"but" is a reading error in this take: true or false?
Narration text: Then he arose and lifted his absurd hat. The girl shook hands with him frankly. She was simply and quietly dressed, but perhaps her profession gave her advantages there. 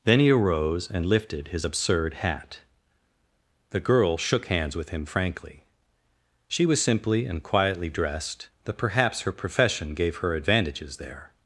true